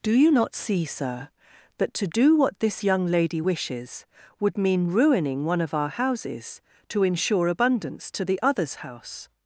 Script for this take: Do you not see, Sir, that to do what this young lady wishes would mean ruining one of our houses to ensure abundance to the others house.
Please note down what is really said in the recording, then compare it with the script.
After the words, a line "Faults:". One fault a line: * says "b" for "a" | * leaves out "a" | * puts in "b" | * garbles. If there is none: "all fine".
Do you not see, Sir, that to do what this young lady wishes would mean ruining one of our houses to ensure abundance to the others house.
Faults:
all fine